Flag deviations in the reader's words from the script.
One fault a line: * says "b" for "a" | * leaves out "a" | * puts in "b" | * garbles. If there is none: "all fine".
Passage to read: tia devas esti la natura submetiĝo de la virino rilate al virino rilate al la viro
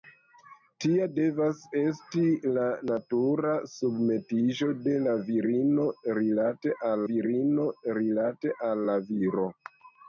all fine